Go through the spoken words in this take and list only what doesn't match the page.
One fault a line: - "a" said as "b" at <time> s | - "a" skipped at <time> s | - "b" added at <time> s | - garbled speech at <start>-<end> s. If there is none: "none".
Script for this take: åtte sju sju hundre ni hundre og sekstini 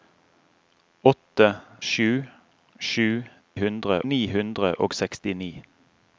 none